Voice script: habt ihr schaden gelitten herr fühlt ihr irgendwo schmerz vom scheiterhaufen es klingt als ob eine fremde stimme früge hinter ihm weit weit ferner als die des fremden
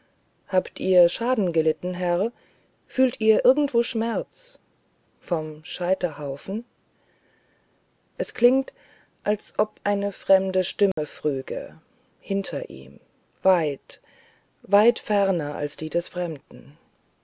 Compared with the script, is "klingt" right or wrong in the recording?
right